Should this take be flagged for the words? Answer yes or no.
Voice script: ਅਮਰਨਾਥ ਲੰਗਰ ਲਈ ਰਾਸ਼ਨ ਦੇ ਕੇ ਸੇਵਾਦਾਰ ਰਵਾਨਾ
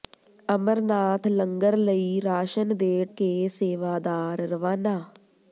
no